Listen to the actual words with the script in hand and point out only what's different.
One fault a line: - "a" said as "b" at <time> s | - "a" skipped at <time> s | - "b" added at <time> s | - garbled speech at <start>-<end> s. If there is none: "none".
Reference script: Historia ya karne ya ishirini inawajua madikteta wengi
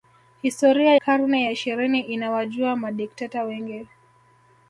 - "ya" skipped at 0.9 s